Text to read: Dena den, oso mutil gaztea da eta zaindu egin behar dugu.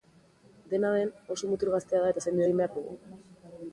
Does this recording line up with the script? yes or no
yes